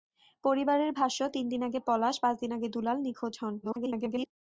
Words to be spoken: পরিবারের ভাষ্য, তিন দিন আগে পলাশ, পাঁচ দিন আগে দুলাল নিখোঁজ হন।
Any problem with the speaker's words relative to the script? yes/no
yes